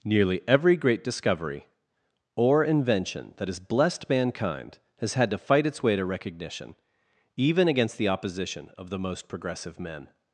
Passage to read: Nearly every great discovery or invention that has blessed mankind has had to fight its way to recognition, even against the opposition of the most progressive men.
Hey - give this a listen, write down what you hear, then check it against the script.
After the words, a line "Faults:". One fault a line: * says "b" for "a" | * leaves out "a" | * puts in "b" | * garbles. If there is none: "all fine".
Nearly every great discovery or invention that has blessed mankind has had to fight its way to recognition, even against the opposition of the most progressive men.
Faults:
all fine